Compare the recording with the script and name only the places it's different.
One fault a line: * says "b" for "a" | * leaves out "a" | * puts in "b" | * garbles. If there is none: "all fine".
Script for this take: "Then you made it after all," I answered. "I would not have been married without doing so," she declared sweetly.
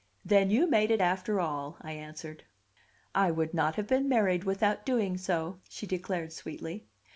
all fine